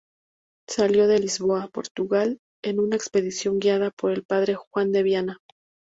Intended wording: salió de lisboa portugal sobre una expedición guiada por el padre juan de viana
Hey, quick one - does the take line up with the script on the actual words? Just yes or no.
no